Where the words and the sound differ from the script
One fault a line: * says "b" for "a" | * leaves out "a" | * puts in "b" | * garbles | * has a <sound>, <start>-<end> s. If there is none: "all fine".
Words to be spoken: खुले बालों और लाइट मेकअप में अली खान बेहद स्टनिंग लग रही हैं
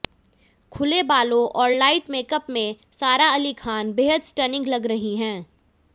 * puts in "सारा"